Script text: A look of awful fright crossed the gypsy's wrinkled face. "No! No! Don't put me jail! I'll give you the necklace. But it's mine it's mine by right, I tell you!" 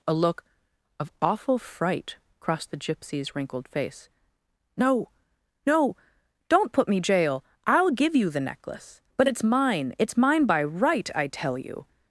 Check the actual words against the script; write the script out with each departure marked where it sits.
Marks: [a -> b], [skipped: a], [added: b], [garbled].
A look of awful fright crossed the gypsy's wrinkled face. "No! No! Don't put me jail! I'll give you the necklace. But it's mine it's mine by right, I tell you!"